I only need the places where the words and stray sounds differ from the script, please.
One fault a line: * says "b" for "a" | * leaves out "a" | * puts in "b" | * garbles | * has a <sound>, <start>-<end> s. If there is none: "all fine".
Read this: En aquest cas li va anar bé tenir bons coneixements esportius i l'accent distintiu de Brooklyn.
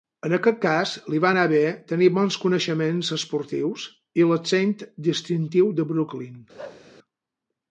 * has a bark, 6.6-6.9 s